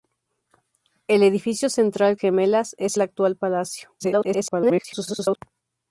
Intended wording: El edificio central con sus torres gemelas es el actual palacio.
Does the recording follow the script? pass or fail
fail